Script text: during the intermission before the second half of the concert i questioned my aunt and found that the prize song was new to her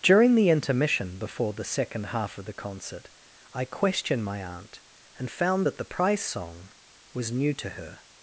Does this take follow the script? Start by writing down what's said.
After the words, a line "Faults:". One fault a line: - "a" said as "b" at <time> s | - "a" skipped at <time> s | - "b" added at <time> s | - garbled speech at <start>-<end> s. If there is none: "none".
during the intermission before the second half of the concert i questioned my aunt and found that the prize song was new to her
Faults:
none